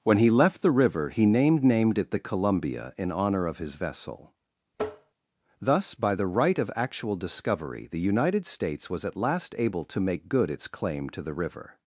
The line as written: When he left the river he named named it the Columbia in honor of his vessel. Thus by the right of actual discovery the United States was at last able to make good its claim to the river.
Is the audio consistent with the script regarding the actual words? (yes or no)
yes